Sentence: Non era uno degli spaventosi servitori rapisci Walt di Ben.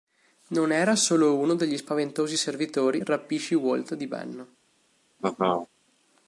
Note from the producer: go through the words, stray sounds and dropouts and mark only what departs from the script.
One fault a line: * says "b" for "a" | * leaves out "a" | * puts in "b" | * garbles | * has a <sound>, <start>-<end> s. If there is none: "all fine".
* puts in "solo"
* has a laugh, 5.2-5.7 s